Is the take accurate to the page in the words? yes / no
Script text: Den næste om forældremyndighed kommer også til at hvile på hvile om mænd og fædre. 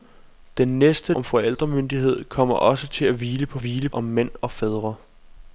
yes